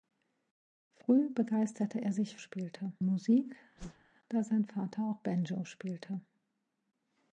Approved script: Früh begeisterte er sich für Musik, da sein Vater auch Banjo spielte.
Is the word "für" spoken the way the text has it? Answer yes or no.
no